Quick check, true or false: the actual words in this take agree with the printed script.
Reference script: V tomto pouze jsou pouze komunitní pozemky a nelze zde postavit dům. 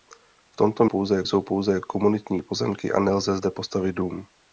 true